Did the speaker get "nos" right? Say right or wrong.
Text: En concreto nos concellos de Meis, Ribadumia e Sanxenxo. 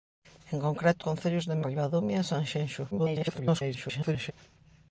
wrong